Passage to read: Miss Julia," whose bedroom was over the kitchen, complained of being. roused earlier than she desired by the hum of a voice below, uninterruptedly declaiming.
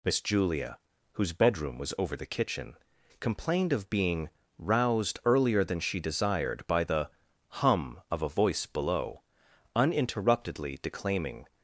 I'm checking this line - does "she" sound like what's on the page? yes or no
yes